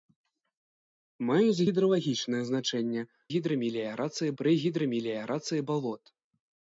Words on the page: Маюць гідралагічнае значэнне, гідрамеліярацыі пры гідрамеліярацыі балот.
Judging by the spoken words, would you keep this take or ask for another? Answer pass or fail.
pass